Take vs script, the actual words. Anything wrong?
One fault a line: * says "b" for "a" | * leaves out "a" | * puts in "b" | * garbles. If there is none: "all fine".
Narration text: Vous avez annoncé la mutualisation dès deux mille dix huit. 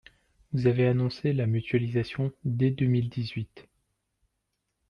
all fine